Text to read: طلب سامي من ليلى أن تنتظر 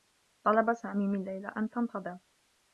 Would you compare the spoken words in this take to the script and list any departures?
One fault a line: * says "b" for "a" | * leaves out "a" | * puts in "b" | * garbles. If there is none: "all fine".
all fine